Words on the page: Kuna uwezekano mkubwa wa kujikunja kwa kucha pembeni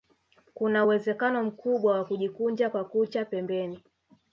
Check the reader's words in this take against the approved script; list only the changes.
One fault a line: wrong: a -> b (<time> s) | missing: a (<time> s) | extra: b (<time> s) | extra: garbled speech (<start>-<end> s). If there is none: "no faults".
no faults